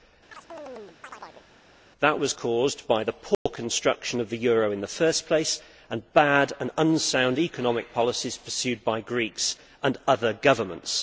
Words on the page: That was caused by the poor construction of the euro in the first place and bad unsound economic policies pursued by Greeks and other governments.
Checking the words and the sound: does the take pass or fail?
fail